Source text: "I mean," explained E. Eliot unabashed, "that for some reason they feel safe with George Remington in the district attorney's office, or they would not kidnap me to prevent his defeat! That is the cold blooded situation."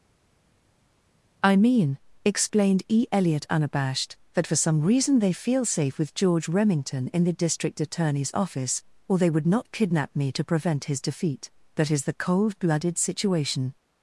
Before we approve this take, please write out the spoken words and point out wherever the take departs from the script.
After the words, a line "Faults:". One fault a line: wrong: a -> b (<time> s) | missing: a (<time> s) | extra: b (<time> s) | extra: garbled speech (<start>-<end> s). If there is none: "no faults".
"I mean," explained E. Eliot unabashed, "that for some reason they feel safe with George Remington in the district attorney's office, or they would not kidnap me to prevent his defeat! That is the cold blooded situation."
Faults:
no faults